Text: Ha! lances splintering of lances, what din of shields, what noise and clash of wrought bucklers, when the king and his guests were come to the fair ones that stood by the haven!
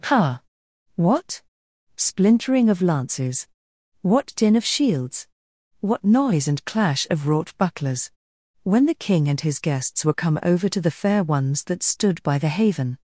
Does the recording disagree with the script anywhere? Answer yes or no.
yes